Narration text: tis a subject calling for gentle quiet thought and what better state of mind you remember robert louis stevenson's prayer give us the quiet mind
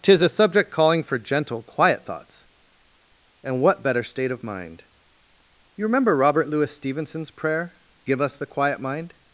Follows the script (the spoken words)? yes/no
no